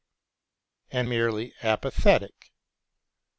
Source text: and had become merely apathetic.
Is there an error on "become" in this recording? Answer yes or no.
yes